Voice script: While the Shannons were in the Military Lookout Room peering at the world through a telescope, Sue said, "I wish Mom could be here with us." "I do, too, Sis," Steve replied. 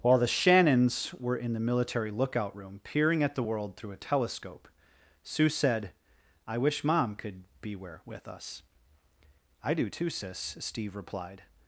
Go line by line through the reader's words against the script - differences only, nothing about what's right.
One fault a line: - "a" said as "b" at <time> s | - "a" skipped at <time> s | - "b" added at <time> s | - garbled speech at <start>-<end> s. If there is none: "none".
- "here" said as "where" at 7.8 s